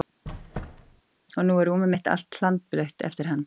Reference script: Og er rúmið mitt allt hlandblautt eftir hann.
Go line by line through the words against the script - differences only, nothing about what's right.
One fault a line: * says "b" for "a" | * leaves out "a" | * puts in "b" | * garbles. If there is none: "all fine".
* puts in "nú"